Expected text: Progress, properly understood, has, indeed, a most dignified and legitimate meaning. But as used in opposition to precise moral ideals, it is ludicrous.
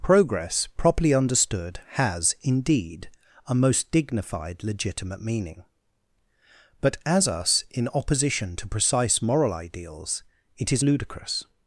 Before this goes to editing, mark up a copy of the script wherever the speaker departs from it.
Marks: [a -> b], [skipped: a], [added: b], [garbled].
Progress, properly understood, has, indeed, a most dignified [skipped: and] legitimate meaning. But as [used -> us] in opposition to precise moral ideals, it is ludicrous.